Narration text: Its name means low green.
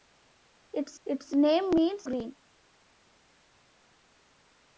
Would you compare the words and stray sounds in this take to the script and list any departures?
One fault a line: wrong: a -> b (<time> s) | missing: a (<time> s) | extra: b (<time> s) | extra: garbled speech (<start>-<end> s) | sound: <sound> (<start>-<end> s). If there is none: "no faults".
extra: its (1.1 s)
missing: low (2.1 s)